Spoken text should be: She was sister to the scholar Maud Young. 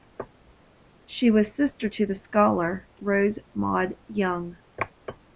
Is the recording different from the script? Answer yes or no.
yes